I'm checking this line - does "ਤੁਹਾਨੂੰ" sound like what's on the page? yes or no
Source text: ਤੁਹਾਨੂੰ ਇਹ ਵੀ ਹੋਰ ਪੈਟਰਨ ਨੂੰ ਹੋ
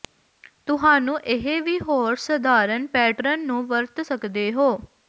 yes